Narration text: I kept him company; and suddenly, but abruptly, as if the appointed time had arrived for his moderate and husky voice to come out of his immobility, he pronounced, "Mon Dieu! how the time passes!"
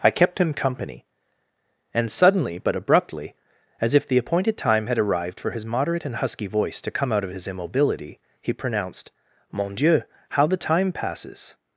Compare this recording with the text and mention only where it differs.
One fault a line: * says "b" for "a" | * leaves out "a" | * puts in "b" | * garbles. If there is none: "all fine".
all fine